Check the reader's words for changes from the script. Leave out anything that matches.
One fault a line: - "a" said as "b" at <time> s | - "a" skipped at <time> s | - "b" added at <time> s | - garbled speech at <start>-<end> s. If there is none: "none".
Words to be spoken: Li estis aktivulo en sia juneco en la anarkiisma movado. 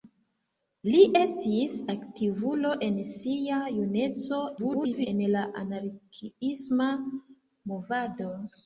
- garbled speech at 4.6-5.1 s